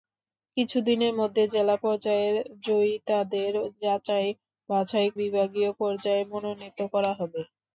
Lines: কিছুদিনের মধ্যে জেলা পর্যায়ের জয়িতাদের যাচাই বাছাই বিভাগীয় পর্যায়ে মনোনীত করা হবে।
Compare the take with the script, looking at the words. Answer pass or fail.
pass